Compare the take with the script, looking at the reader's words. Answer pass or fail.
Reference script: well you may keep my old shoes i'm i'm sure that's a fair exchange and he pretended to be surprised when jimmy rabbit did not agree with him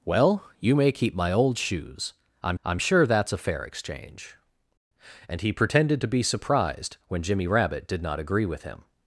pass